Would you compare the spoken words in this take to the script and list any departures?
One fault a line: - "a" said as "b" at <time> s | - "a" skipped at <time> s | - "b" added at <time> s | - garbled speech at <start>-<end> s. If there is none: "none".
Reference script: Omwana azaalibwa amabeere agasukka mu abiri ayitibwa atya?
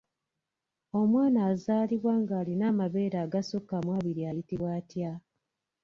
- "ng'alina" added at 2.2 s